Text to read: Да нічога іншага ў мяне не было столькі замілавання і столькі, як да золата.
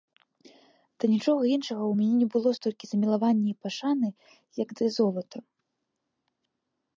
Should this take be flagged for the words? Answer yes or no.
yes